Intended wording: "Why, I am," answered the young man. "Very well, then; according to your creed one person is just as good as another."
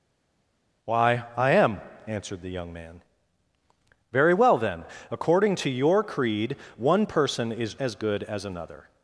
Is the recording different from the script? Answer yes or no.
yes